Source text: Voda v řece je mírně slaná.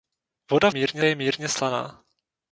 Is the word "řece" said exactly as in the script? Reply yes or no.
no